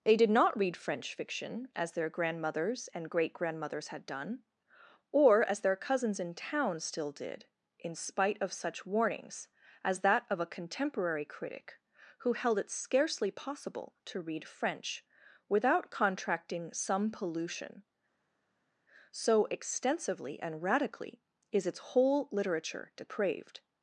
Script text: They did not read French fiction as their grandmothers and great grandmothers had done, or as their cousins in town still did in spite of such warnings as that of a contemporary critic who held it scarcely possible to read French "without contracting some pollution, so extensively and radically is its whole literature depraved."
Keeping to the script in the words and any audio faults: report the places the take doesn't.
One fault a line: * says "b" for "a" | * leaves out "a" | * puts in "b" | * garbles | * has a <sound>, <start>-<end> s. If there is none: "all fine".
all fine